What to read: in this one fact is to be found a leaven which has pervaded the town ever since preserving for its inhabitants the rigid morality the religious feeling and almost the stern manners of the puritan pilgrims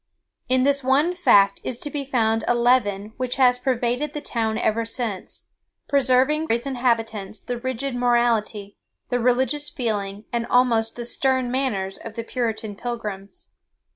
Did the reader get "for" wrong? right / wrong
wrong